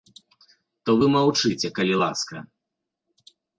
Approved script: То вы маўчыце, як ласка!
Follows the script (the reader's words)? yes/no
no